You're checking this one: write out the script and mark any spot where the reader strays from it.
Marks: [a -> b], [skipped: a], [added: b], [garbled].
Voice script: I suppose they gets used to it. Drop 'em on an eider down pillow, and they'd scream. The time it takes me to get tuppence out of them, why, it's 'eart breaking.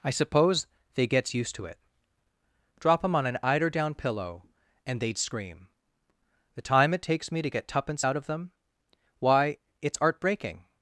I suppose they gets used to it. Drop 'em on an eider down pillow, and they'd scream. The time it takes me to get tuppence out of them, why, it's 'eart breaking.